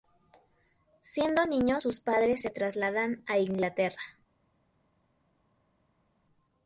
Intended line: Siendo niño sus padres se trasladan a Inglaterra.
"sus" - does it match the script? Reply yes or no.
yes